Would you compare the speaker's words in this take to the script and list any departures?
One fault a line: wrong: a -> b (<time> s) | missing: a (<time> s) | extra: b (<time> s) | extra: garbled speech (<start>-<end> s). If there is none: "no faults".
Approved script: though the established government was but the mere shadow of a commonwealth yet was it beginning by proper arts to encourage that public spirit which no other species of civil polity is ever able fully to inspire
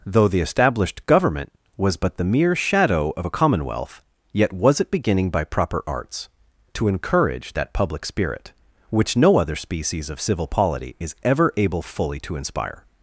no faults